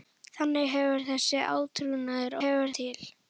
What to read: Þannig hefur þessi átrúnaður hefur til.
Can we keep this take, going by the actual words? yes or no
yes